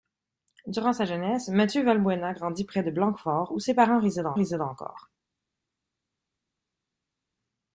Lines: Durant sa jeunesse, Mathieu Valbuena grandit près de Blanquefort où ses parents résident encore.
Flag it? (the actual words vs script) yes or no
yes